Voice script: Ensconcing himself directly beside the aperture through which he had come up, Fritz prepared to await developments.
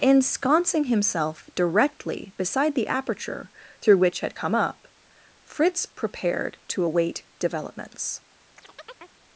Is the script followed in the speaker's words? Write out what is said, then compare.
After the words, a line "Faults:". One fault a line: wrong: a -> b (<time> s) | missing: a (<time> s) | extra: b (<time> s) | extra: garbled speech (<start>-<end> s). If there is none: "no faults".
Ensconcing himself directly beside the aperture through which had come up, Fritz prepared to await developments.
Faults:
missing: he (4.2 s)